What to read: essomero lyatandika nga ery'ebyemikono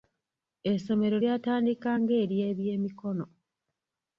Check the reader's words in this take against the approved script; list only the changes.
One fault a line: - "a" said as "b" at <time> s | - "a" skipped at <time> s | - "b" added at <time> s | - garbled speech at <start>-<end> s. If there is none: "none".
none